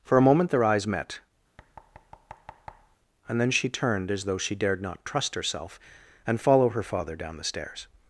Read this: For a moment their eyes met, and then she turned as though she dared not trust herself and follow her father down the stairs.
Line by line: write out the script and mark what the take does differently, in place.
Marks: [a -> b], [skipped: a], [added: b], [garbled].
For a moment their eyes met, and then she turned as though she dared not trust herself and follow her father down the stairs.